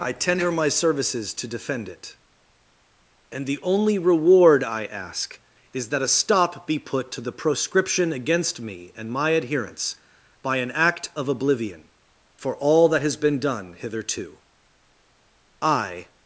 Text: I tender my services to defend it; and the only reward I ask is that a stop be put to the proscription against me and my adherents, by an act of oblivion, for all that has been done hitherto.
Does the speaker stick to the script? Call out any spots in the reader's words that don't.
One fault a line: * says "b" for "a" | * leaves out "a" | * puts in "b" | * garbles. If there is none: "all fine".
* puts in "I"